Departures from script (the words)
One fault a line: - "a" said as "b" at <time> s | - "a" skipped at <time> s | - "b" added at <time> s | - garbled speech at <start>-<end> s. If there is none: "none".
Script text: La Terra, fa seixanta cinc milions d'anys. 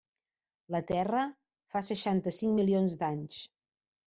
none